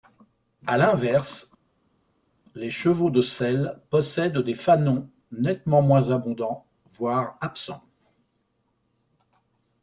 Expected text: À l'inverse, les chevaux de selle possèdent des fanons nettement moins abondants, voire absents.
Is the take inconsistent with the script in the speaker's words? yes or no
no